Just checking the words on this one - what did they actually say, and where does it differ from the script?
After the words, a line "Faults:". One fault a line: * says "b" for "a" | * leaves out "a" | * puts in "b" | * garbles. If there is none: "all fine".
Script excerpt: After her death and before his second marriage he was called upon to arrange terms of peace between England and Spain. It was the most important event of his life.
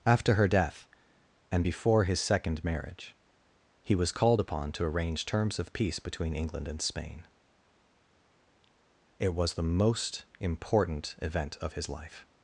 After her death and before his second marriage he was called upon to arrange terms of peace between England and Spain. It was the most important event of his life.
Faults:
all fine